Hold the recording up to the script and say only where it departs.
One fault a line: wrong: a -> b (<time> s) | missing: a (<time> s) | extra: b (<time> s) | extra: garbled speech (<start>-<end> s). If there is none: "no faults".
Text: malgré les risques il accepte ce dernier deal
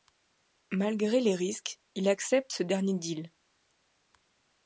no faults